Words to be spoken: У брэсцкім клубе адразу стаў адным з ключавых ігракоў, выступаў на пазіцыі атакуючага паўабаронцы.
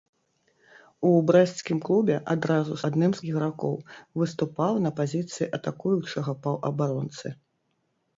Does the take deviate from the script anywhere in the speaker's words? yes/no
yes